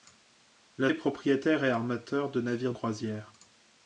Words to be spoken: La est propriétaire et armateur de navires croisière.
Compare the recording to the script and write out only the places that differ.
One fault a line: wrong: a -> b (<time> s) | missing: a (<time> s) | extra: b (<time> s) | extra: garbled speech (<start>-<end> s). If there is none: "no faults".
no faults